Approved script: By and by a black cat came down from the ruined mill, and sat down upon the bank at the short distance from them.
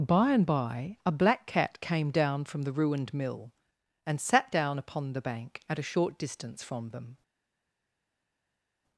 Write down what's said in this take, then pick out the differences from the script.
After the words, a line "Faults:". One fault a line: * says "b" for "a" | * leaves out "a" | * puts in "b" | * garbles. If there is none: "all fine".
By and by a black cat came down from the ruined mill, and sat down upon the bank at a short distance from them.
Faults:
* says "a" for "the"